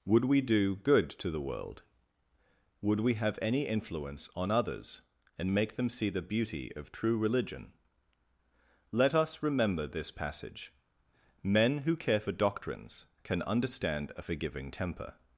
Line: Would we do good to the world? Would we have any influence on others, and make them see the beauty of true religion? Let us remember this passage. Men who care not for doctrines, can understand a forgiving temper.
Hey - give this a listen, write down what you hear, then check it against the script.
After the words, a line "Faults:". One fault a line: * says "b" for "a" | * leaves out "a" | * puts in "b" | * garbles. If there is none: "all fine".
Would we do good to the world? Would we have any influence on others, and make them see the beauty of true religion? Let us remember this passage. Men who care for doctrines, can understand a forgiving temper.
Faults:
* leaves out "not"